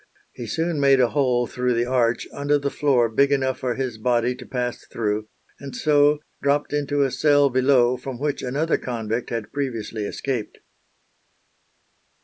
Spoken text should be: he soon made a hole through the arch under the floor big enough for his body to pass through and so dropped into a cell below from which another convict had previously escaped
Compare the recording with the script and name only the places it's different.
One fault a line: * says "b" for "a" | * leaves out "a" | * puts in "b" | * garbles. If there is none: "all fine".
all fine